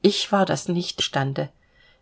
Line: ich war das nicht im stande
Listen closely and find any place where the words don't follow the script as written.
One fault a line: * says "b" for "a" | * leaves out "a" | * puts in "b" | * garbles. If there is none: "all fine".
* leaves out "im"